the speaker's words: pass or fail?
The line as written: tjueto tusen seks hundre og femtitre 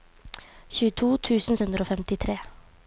fail